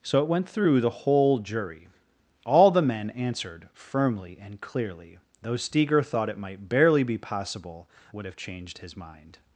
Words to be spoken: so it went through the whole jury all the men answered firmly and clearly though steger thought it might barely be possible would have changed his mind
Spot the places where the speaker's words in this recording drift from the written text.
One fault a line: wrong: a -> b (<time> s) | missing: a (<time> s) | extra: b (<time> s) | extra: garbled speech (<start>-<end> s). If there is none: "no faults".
no faults